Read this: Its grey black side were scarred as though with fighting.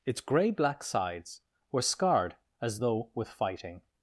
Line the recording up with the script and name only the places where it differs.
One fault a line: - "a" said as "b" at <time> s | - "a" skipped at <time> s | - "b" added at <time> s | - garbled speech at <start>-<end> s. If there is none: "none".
- "side" said as "sides" at 0.8 s